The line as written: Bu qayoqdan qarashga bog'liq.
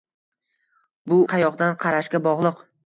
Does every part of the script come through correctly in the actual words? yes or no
yes